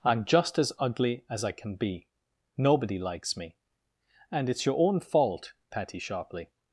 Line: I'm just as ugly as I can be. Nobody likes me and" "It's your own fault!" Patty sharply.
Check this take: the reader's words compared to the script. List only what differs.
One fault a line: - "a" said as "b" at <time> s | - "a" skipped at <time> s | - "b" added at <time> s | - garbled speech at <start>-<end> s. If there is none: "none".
none